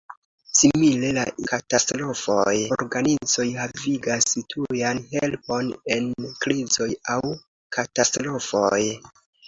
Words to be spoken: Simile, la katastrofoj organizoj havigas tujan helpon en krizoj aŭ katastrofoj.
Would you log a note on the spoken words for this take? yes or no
no